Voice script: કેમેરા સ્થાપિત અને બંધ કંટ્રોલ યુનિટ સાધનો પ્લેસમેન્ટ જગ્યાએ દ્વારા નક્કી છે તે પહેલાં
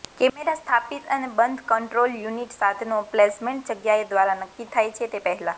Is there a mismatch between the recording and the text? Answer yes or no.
yes